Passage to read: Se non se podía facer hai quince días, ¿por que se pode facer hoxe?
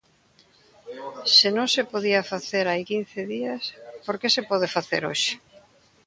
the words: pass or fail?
pass